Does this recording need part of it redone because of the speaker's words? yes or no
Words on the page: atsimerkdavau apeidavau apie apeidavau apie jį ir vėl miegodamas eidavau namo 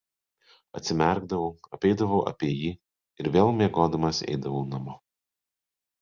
yes